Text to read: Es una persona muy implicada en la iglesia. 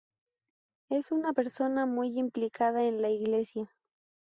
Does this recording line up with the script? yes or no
yes